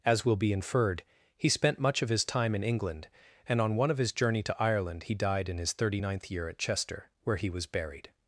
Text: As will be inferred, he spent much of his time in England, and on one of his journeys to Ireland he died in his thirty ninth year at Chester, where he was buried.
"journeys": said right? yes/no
no